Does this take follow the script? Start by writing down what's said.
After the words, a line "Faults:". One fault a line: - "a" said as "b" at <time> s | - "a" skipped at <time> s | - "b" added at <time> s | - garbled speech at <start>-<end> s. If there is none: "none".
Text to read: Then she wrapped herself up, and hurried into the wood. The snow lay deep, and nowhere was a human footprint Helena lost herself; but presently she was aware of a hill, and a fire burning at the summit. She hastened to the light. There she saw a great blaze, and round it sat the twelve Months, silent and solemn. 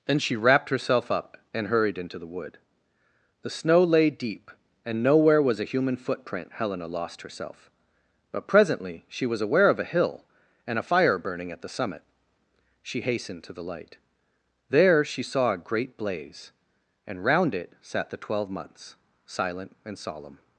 Then she wrapped herself up, and hurried into the wood. The snow lay deep, and nowhere was a human footprint Helena lost herself; but presently she was aware of a hill, and a fire burning at the summit. She hastened to the light. There she saw a great blaze, and round it sat the twelve Months, silent and solemn.
Faults:
none